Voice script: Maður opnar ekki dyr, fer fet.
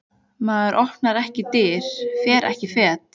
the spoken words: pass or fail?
fail